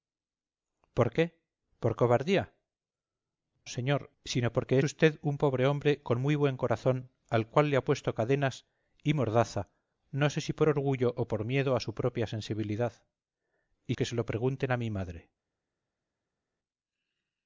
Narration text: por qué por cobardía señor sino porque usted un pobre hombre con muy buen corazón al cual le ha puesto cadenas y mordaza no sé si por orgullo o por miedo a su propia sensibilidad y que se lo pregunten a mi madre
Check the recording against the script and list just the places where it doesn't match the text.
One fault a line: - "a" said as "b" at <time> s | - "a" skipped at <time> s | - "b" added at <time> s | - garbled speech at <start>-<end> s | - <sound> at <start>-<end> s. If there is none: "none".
none